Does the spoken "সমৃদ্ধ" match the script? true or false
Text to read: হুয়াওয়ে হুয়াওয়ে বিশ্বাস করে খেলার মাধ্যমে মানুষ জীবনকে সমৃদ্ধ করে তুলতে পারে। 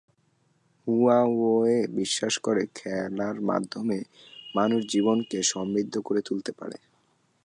true